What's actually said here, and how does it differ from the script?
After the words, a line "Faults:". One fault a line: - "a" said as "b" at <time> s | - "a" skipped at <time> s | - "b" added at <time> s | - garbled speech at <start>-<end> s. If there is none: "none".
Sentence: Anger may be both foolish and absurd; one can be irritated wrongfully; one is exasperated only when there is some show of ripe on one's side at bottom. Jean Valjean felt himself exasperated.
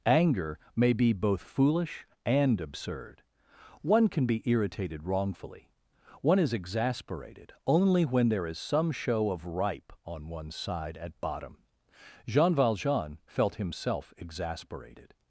Anger may be both foolish and absurd; one can be irritated wrongfully; one is exasperated only when there is some show of ripe on one's side at bottom. Jean Valjean felt himself exasperated.
Faults:
none